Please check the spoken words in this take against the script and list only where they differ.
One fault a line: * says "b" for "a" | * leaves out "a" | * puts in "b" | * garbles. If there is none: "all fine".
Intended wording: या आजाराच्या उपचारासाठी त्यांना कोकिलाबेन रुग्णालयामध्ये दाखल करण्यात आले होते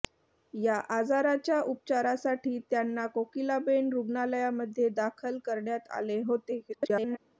* garbles